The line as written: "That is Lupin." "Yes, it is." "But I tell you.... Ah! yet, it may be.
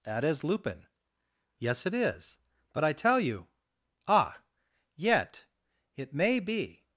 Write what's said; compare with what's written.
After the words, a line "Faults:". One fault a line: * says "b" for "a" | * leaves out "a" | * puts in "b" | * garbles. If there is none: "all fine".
"That is Lupin." "Yes, it is." "But I tell you.... Ah! yet, it may be.
Faults:
all fine